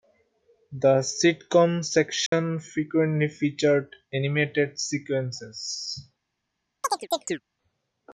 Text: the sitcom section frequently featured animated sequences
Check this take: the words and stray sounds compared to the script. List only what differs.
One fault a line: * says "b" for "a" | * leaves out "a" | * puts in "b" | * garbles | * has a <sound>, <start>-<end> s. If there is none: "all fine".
* has a dropout, 2.3-2.3 s
* has a chirp, 6.8-7.4 s